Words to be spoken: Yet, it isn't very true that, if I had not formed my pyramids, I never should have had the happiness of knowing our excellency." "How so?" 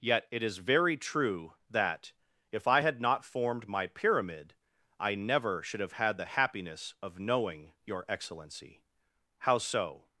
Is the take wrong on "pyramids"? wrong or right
wrong